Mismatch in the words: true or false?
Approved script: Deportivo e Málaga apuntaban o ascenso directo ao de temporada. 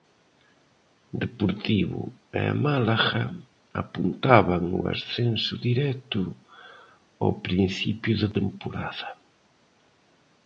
true